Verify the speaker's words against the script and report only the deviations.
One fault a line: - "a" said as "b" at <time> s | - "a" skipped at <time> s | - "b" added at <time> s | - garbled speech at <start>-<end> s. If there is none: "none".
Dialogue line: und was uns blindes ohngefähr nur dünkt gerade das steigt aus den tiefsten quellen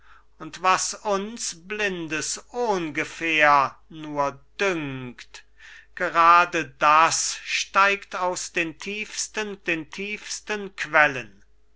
- "den tiefsten" added at 9.6 s